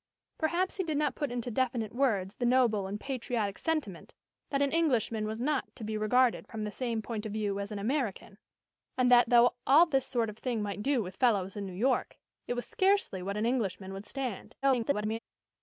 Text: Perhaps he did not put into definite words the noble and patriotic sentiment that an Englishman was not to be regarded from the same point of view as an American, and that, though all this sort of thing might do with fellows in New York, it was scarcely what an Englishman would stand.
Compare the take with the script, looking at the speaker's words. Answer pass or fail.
fail